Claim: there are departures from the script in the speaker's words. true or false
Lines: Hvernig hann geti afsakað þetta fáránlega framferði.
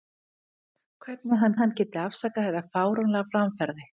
true